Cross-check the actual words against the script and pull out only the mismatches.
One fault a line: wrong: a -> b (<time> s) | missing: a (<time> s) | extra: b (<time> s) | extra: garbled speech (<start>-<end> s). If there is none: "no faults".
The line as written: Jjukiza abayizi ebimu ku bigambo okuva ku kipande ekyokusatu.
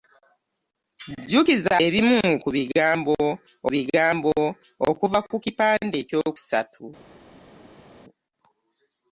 missing: abayizi (1.7 s)
extra: bigambo (3.7 s)